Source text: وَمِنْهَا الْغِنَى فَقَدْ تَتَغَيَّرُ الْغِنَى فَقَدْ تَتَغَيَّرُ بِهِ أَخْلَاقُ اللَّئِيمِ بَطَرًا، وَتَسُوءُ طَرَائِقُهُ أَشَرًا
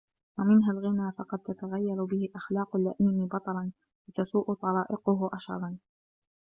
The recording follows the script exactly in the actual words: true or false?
false